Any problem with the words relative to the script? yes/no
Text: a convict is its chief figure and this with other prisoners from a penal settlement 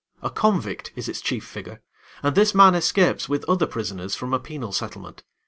yes